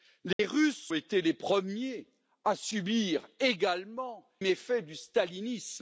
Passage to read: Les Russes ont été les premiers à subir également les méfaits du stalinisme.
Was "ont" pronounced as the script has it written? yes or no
no